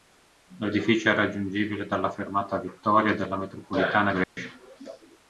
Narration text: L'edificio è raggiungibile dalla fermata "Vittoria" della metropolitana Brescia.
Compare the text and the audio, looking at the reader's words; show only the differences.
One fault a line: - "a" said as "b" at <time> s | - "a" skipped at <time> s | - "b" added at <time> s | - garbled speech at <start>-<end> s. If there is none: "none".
none